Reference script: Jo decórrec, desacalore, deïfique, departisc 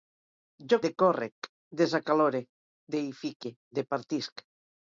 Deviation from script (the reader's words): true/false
false